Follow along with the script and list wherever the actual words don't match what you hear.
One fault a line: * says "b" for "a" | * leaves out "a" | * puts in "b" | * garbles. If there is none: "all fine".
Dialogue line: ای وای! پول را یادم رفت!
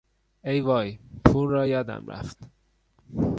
all fine